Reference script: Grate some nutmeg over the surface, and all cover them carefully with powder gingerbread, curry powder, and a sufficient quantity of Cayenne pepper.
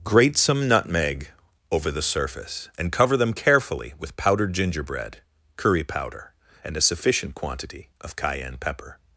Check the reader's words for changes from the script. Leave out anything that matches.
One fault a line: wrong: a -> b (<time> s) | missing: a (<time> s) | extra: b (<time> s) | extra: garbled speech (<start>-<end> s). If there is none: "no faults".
missing: all (2.9 s)
wrong: powder -> powdered (4.2 s)